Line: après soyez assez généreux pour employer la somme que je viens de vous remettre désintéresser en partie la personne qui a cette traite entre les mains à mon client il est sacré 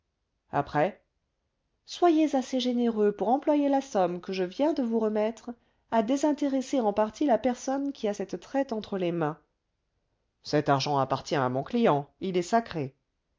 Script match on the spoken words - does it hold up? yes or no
no